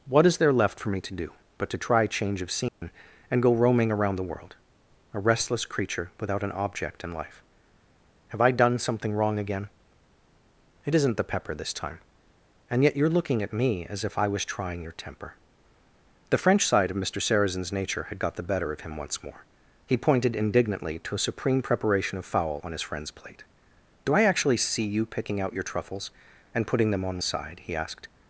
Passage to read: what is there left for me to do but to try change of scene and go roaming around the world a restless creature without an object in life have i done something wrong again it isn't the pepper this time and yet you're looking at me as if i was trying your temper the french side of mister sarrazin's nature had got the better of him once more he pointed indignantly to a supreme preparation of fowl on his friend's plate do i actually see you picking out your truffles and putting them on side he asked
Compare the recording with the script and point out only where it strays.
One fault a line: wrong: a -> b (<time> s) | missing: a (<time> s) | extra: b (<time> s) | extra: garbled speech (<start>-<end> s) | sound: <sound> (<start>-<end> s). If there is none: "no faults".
sound: dropout (2.7-2.8 s)